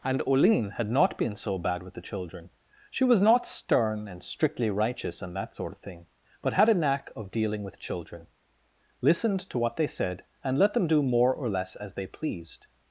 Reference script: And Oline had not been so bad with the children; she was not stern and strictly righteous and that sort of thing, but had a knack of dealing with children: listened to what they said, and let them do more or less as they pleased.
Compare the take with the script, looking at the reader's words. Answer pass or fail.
pass